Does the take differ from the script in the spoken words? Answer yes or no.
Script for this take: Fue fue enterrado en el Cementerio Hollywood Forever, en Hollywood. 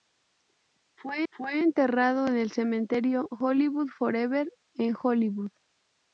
no